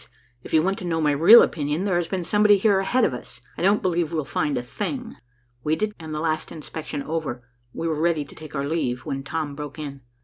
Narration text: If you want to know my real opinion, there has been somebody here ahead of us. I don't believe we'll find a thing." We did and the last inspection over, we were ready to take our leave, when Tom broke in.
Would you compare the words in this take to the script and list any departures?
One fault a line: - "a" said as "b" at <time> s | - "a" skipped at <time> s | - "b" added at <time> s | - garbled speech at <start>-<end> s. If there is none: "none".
none